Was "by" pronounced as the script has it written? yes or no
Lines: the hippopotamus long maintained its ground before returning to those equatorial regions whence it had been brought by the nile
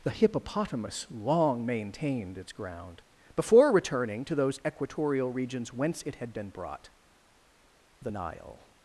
no